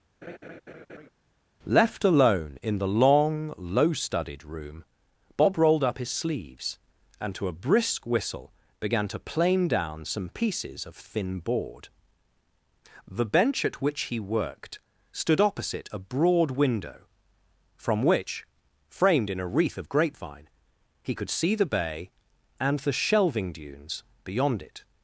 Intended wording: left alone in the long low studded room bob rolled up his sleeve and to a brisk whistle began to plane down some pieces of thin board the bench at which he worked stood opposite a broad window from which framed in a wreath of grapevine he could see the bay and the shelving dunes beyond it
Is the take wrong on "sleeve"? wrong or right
wrong